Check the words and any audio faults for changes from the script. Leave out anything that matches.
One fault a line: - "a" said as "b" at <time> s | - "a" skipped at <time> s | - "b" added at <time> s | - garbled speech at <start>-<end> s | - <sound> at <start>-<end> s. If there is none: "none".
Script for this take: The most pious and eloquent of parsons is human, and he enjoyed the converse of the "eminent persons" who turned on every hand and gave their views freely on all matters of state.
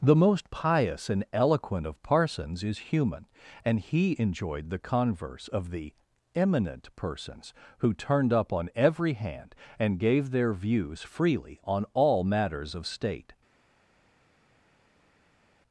- "up" added at 8.3 s